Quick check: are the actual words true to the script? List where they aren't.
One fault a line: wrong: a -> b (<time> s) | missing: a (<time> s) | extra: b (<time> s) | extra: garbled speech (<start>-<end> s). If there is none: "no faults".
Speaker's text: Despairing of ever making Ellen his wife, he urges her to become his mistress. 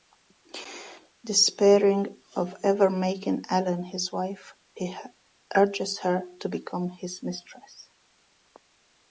no faults